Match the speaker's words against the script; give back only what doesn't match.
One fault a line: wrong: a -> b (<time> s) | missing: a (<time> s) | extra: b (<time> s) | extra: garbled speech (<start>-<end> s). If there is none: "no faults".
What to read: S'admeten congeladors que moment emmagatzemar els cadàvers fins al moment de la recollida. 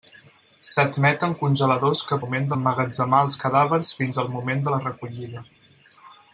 no faults